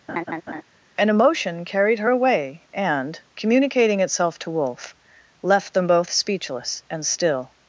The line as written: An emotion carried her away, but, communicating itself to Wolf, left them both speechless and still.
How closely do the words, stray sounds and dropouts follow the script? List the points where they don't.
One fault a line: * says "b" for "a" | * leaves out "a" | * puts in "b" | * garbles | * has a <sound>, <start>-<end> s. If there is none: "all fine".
* has a laugh, 0.1-0.6 s
* says "and" for "but"